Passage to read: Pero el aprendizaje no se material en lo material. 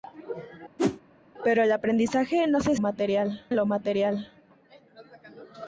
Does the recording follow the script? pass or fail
pass